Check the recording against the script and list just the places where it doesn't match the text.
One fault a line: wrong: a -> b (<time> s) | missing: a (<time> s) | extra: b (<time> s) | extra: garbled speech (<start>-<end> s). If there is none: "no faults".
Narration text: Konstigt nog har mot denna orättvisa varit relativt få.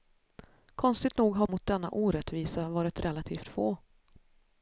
no faults